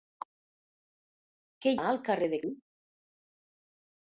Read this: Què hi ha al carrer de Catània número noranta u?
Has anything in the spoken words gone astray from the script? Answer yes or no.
yes